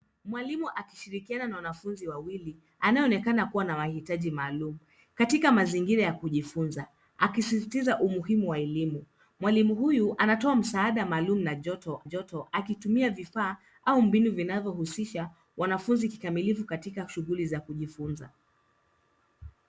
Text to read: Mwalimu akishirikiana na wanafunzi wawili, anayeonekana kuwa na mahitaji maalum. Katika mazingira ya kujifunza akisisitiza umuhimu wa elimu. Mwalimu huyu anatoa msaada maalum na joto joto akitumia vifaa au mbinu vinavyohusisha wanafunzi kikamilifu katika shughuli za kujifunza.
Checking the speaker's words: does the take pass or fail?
pass